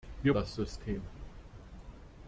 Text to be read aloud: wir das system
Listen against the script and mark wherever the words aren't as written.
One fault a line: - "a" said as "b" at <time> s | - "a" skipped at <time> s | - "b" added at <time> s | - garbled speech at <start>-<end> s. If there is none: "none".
none